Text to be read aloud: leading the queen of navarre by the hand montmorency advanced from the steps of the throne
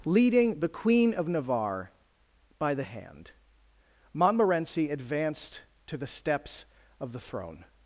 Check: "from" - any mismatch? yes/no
yes